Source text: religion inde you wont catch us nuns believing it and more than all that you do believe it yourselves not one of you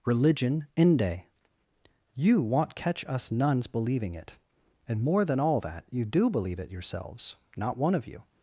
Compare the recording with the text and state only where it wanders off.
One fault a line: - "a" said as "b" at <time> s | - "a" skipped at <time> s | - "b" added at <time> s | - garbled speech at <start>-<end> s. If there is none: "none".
none